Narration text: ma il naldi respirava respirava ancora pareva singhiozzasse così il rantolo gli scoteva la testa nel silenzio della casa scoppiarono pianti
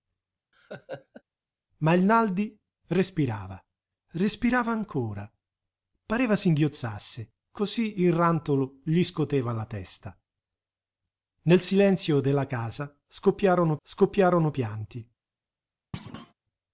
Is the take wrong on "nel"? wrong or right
right